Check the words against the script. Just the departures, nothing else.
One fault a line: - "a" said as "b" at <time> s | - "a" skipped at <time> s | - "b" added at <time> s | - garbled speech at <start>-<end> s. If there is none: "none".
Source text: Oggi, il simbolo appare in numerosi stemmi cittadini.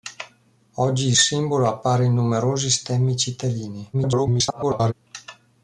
- garbled speech at 3.9-4.9 s